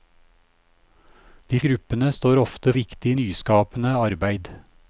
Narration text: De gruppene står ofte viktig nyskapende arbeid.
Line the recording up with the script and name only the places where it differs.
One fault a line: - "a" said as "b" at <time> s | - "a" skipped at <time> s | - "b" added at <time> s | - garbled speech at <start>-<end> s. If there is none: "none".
none